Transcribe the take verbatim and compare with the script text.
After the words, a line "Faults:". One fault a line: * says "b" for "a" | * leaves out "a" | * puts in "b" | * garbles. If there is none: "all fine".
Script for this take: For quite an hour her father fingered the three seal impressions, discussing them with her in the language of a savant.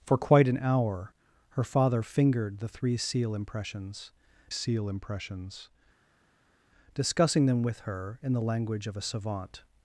For quite an hour her father fingered the three seal impressions seal impressions, discussing them with her in the language of a savant.
Faults:
* puts in "seal impressions"